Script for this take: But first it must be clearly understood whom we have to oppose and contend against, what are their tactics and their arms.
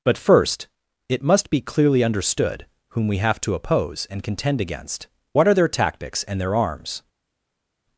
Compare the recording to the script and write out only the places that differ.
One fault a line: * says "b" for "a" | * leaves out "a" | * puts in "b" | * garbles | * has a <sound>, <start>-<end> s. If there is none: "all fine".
all fine